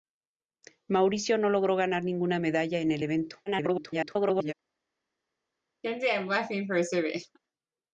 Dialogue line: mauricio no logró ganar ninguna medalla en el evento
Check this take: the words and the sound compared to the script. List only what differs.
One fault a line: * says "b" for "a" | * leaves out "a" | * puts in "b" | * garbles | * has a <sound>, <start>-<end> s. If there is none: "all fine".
* garbles
* has a laugh, 5.8-7.4 s